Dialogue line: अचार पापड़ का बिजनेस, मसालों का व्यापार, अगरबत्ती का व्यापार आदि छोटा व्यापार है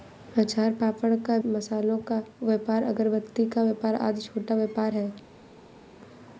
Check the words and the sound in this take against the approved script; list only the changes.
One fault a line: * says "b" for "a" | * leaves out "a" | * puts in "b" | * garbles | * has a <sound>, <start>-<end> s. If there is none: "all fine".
* leaves out "बिजनेस"